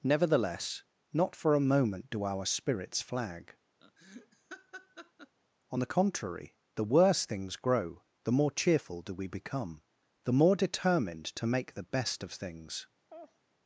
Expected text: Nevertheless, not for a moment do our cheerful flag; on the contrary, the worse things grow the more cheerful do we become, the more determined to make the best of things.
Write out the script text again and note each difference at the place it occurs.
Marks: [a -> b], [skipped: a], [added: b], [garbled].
Nevertheless, not for a moment do our [cheerful -> spirits] flag; on the contrary, the worse things grow the more cheerful do we become, the more determined to make the best of things.